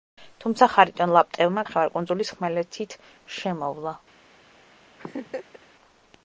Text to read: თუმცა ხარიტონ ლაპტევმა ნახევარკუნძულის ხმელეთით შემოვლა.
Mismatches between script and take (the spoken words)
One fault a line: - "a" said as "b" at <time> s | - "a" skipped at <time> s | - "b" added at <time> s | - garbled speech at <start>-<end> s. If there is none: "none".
none